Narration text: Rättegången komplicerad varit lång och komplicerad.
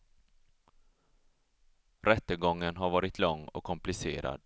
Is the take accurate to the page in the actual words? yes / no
no